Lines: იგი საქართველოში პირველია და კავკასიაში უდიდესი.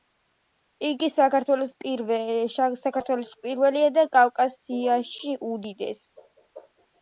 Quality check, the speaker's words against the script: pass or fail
pass